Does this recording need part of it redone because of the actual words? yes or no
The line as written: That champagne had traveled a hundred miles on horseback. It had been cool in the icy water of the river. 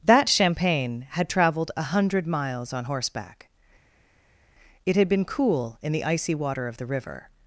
no